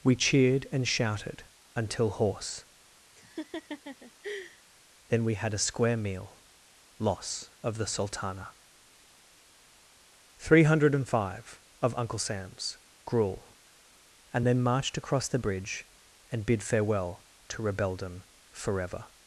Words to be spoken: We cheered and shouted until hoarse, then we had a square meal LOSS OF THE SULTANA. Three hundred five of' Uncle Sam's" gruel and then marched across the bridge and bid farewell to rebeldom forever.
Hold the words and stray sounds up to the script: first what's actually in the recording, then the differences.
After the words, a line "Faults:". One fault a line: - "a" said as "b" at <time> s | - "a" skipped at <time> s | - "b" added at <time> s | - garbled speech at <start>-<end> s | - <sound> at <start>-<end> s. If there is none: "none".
We cheered and shouted until hoarse, then we had a square meal LOSS OF THE SULTANA. Three hundred five of' Uncle Sam's" gruel and then marched across the bridge and bid farewell to rebeldom forever.
Faults:
- laugh at 3.2-4.6 s